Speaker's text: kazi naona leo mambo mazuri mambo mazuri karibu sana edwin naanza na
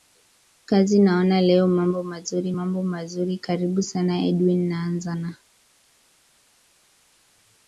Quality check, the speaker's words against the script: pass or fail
pass